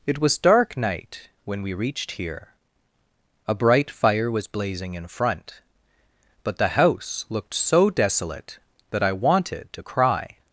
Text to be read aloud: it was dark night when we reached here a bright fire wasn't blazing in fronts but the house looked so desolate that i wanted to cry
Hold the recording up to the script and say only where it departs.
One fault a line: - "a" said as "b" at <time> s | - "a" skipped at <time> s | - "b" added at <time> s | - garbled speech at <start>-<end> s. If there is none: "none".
- "wasn't" said as "was" at 4.3 s
- "fronts" said as "front" at 5.1 s